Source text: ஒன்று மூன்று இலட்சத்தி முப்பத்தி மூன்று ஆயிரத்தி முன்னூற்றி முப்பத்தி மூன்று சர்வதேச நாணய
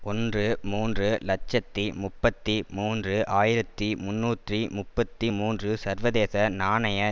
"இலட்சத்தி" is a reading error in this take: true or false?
false